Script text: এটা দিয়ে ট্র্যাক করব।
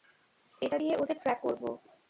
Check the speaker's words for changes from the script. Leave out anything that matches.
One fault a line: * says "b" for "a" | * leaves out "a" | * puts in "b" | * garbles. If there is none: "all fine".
* puts in "ওদের"